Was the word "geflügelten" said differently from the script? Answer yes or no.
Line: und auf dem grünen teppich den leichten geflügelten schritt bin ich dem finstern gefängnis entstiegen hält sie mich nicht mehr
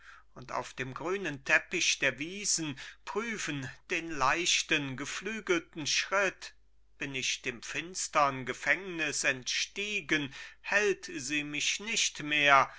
no